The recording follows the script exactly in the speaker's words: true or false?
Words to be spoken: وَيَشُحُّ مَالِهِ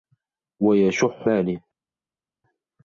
true